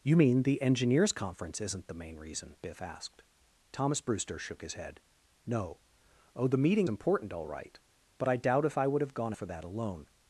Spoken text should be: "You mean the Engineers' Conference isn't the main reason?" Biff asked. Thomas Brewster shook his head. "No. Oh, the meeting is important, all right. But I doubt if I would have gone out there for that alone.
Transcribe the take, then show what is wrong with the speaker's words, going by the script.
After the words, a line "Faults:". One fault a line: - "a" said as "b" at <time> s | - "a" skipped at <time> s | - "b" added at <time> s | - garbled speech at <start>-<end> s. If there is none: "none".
"You mean the Engineers' Conference isn't the main reason?" Biff asked. Thomas Brewster shook his head. "No. Oh, the meeting important, all right. But I doubt if I would have gone for that alone.
Faults:
- "is" skipped at 6.9 s
- "out there" skipped at 9.3 s